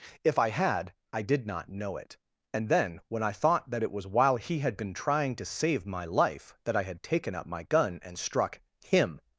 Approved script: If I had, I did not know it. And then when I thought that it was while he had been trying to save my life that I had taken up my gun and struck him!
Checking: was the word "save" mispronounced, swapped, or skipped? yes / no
no